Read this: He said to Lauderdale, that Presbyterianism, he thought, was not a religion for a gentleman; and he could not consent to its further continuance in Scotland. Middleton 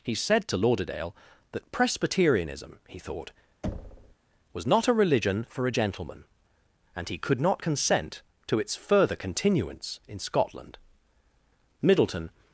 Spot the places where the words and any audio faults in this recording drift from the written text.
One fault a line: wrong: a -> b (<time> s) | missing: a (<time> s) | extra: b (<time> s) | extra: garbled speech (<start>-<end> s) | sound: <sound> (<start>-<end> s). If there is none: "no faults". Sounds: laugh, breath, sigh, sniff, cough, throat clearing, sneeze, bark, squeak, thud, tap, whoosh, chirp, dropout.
sound: thud (3.6-4.2 s)